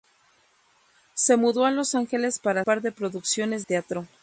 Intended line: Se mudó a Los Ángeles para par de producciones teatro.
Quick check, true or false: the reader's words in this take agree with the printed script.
true